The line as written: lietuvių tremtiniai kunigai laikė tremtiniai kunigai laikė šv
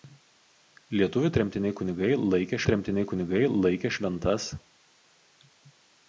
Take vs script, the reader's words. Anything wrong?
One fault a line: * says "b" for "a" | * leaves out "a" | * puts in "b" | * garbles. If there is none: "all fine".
all fine